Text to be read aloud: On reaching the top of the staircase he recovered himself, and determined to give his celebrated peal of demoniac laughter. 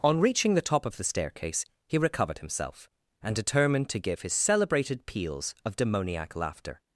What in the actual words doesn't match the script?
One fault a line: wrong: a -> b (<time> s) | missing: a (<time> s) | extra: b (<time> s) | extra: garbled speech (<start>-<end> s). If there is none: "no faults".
wrong: peal -> peals (5.0 s)